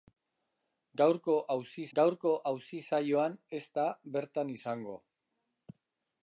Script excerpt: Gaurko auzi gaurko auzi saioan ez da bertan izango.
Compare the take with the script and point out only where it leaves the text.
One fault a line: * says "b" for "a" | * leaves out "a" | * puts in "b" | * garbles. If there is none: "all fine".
all fine